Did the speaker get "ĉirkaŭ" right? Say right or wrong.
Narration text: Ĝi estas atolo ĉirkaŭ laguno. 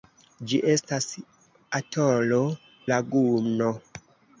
wrong